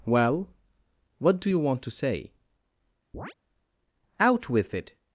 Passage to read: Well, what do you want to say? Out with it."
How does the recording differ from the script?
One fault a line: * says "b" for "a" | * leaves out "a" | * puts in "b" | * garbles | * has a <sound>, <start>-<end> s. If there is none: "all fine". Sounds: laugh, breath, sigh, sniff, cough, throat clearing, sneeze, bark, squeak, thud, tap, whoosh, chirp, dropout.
* has a chirp, 3.1-3.3 s